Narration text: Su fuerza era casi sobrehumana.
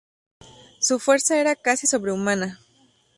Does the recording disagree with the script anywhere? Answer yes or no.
no